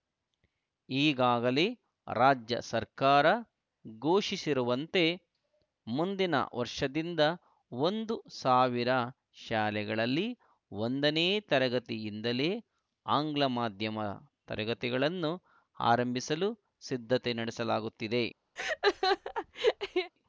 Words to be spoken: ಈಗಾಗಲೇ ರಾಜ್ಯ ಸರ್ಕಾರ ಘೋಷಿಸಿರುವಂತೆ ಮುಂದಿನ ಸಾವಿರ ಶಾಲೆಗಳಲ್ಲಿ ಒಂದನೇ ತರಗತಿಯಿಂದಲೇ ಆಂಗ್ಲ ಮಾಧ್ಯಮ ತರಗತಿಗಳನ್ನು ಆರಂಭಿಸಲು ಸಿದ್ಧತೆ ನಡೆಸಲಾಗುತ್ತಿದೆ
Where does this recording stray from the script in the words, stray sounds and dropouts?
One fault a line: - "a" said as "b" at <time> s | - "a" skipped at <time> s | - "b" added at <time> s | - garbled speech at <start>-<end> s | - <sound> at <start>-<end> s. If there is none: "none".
- "ವರ್ಷದಿಂದ ಒಂದು" added at 6.5 s
- laugh at 18.6-20.1 s